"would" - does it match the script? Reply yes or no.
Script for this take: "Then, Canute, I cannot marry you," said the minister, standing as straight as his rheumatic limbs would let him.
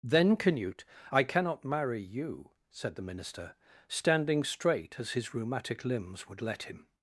yes